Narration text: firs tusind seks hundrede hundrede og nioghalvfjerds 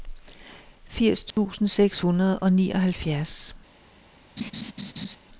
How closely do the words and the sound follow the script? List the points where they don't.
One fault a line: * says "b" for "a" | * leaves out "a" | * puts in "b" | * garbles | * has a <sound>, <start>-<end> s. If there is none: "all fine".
* has a dropout, 1.3-1.4 s
* leaves out "hundrede"
* has a laugh, 4.4-5.2 s